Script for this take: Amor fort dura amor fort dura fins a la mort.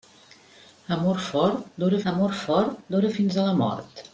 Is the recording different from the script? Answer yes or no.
no